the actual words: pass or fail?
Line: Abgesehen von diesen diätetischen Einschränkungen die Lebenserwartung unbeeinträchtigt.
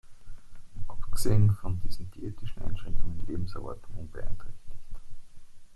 pass